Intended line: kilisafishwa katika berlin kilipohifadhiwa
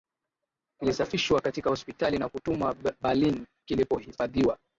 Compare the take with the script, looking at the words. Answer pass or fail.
fail